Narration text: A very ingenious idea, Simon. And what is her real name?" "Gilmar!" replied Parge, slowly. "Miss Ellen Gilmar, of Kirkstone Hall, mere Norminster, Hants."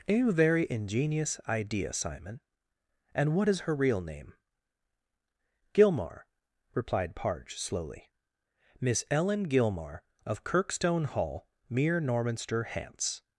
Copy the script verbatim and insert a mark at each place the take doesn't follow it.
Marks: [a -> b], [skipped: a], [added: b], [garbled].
A very ingenious idea, Simon. And what is her real name?" "Gilmar!" replied Parge, slowly. "Miss Ellen Gilmar, of Kirkstone Hall, mere Norminster, Hants."